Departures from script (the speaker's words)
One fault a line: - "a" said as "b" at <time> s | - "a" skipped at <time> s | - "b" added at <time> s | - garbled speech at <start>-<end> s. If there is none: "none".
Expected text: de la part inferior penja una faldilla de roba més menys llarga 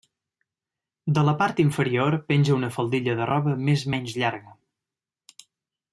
none